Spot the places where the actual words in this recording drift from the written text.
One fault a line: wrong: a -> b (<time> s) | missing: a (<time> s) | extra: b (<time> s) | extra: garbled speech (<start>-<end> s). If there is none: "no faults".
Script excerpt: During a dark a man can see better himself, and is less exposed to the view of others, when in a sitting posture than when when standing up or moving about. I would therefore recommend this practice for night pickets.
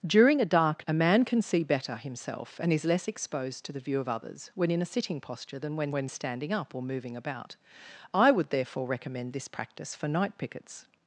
no faults